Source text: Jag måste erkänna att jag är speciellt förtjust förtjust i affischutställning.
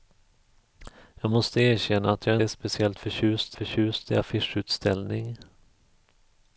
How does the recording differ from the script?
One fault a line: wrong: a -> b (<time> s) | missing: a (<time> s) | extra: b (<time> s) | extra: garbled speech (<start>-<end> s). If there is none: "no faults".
no faults